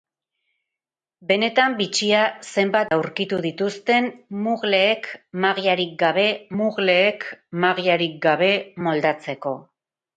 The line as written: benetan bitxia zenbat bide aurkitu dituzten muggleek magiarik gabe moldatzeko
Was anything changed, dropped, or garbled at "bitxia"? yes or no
no